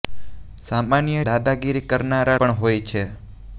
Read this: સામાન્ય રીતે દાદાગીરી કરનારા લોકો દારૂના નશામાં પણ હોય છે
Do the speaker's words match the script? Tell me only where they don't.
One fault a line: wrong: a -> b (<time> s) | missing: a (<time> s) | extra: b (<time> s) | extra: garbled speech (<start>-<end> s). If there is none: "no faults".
missing: રીતે (1.2 s)
missing: લોકો દારૂના નશામાં (2.4 s)